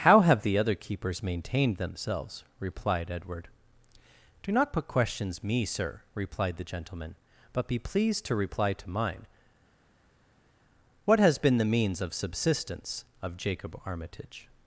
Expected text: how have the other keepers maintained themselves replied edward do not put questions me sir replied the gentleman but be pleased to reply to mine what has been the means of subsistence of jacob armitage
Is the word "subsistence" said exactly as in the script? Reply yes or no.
yes